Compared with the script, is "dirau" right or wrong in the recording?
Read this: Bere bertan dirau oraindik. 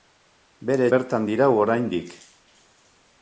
right